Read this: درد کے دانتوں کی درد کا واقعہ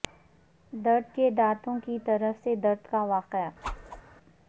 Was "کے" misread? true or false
false